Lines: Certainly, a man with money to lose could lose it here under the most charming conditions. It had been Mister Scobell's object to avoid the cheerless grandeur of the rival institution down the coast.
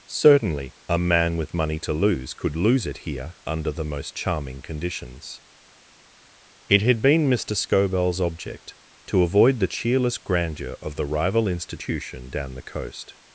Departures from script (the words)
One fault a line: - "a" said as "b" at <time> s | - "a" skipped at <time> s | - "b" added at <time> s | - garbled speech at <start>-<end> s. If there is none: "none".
none